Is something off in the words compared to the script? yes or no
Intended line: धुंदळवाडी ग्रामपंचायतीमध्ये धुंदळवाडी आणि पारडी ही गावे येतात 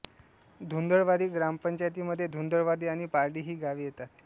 no